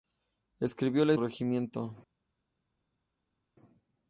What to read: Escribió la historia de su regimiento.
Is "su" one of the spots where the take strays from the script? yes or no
yes